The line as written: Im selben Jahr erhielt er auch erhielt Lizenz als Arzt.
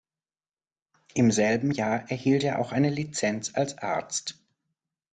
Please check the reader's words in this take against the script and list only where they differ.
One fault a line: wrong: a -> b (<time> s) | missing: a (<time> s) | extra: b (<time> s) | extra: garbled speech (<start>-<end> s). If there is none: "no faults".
wrong: erhielt -> eine (2.7 s)